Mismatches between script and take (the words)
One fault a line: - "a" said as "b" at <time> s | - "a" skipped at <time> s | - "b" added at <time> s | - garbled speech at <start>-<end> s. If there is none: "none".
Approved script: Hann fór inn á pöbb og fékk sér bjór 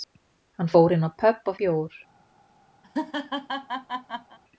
- "fékk sér" skipped at 1.6 s